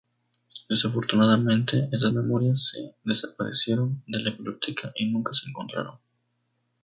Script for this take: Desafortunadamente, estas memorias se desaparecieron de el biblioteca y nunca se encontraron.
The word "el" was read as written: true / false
false